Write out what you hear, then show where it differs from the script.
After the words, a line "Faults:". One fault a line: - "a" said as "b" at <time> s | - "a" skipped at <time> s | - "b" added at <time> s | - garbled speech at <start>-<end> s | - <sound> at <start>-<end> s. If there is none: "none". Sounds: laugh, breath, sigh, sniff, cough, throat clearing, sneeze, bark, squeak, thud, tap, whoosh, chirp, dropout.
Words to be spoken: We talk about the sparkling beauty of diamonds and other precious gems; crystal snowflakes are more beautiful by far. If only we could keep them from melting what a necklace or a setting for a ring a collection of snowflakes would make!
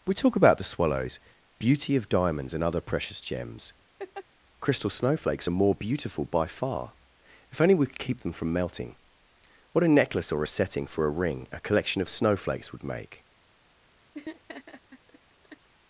We talk about the swallows beauty of diamonds and other precious gems; crystal snowflakes are more beautiful by far. If only we could keep them from melting what a necklace or a setting for a ring a collection of snowflakes would make!
Faults:
- "sparkling" said as "swallows" at 0.6 s
- laugh at 4.0-4.2 s
- laugh at 14.1-15.7 s